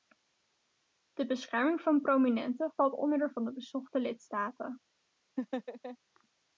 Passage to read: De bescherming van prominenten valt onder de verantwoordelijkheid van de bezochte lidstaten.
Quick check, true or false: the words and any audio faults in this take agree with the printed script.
false